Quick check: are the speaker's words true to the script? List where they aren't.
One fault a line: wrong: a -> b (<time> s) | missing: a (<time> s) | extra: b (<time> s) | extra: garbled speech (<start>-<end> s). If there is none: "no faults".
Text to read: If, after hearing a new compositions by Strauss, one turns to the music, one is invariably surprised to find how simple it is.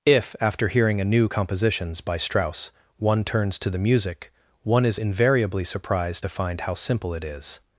no faults